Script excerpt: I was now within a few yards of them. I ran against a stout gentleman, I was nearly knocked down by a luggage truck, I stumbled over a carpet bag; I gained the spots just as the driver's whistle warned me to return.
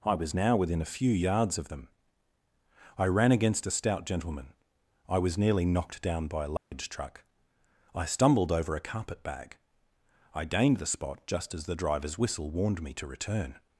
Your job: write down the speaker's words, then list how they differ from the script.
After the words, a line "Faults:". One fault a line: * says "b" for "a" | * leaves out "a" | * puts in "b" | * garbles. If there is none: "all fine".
I was now within a few yards of them. I ran against a stout gentleman, I was nearly knocked down by a luggage truck, I stumbled over a carpet bag; I gained the spot just as the driver's whistle warned me to return.
Faults:
* says "spot" for "spots"